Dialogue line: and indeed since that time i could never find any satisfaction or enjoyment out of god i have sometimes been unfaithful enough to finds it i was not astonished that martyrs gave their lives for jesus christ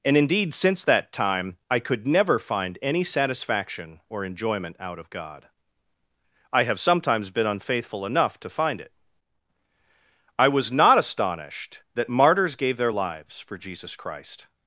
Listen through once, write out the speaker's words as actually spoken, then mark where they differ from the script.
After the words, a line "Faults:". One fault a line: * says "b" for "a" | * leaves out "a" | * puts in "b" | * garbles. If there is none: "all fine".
and indeed since that time i could never find any satisfaction or enjoyment out of god i have sometimes been unfaithful enough to find it i was not astonished that martyrs gave their lives for jesus christ
Faults:
* says "find" for "finds"